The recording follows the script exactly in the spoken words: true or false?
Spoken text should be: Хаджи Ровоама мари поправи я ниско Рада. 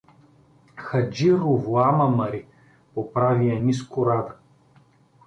true